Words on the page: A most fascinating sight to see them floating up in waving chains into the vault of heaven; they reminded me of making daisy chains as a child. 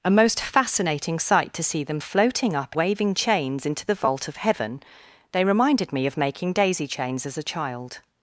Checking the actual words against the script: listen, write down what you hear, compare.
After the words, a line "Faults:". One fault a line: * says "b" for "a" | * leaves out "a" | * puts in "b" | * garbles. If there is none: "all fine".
A most fascinating sight to see them floating up waving chains into the vault of heaven; they reminded me of making daisy chains as a child.
Faults:
* leaves out "in"